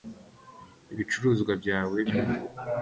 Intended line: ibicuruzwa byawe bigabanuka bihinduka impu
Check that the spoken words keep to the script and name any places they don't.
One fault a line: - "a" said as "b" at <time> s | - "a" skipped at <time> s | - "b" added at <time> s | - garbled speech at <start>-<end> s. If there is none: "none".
- "bigabanuka bihinduka" skipped at 2.0 s